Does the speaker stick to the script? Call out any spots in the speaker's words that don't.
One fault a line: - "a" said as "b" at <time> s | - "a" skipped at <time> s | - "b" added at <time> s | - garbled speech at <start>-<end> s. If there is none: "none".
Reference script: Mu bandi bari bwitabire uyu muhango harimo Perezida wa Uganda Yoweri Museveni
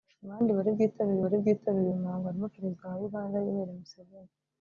- "bari bwitabire" added at 1.2 s